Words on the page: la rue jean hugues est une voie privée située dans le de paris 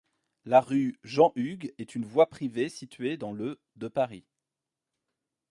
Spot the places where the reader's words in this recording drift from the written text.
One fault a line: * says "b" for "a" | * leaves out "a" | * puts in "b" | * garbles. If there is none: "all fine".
all fine